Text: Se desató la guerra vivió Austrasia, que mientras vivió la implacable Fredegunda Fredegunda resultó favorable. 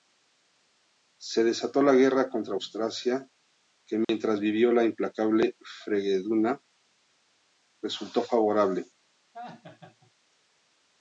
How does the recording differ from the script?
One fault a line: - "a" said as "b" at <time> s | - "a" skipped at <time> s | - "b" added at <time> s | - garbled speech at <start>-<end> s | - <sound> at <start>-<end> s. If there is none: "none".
- "vivió" said as "contra" at 2.3 s
- dropout at 4.0-4.1 s
- "Fredegunda" skipped at 6.6 s
- laugh at 9.3-10.1 s